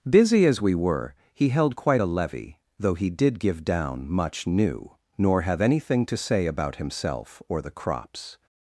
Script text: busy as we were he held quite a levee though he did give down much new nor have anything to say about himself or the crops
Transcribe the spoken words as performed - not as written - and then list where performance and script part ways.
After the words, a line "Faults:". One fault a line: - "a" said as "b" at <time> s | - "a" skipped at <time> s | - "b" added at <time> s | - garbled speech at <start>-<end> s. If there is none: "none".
busy as we were he held quite a levee though he did give down much new nor have anything to say about himself or the crops
Faults:
none